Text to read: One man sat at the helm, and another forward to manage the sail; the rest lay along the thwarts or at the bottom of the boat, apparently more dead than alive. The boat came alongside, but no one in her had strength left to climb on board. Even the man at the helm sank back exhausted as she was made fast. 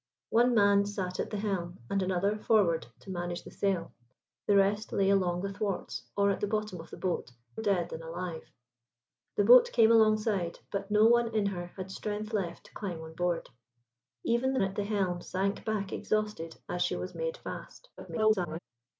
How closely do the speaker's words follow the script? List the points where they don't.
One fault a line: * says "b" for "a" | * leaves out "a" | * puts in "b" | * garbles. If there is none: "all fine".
* leaves out "apparently more"
* leaves out "man"
* garbles